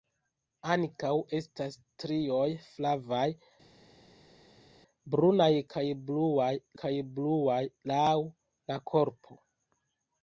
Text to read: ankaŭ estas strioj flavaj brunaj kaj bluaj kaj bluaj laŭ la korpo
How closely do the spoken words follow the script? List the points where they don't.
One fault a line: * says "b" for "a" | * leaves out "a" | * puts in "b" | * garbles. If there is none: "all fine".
all fine